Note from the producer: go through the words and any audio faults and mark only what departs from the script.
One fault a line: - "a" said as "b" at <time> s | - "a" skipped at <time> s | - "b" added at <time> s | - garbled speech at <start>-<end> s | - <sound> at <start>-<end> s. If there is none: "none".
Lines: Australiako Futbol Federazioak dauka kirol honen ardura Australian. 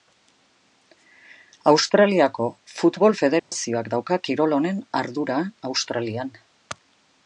- dropout at 3.4-3.5 s